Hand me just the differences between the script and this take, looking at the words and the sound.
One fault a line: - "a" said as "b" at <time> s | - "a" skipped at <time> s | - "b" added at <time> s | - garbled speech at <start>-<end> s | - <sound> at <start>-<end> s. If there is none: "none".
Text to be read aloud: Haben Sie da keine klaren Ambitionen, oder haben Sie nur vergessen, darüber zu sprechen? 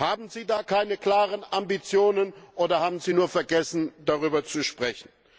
none